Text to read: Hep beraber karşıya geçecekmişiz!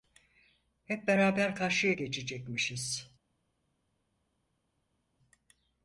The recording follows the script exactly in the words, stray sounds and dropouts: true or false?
true